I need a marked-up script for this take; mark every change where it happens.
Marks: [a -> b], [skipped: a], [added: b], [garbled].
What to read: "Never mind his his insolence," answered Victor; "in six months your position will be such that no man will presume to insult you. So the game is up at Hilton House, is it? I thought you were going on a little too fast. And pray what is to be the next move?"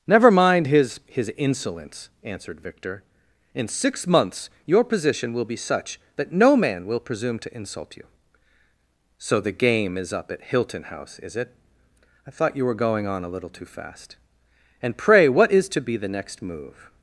"Never mind his his insolence," answered Victor; "in six months your position will be such that no man will presume to insult you. So the game is up at Hilton House, is it? I thought you were going on a little too fast. And pray what is to be the next move?"